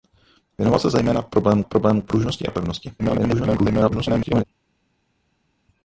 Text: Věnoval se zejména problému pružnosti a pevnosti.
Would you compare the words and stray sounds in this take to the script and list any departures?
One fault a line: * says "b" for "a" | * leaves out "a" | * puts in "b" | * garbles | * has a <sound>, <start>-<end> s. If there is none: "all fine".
* puts in "problému"
* garbles